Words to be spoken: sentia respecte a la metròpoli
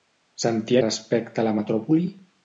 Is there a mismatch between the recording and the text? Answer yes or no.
no